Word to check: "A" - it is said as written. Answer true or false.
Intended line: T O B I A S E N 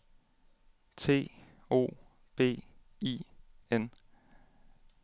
false